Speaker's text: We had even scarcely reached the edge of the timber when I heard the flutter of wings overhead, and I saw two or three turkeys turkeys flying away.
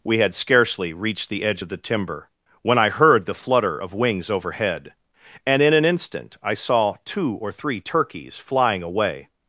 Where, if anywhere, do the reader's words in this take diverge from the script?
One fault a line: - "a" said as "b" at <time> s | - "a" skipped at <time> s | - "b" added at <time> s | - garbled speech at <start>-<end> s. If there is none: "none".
- "even" skipped at 0.3 s
- "in an instant" added at 5.6 s
- "turkeys" skipped at 8.4 s